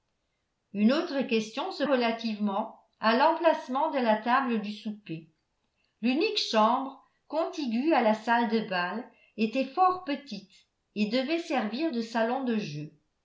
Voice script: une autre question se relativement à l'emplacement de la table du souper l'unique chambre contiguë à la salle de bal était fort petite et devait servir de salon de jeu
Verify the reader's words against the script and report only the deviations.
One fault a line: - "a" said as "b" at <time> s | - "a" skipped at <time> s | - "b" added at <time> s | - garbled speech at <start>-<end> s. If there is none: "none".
none